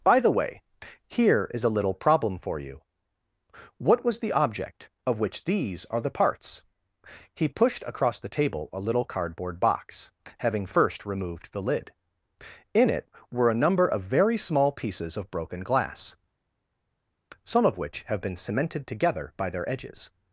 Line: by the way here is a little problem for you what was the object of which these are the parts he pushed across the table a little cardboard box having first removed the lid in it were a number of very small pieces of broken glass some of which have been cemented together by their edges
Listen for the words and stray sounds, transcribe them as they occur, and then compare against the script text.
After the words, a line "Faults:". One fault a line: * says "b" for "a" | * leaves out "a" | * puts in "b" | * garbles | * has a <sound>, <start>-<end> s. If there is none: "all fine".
by the way here is a little problem for you what was the object of which these are the parts he pushed across the table a little cardboard box having first removed the lid in it were a number of very small pieces of broken glass some of which have been cemented together by their edges
Faults:
all fine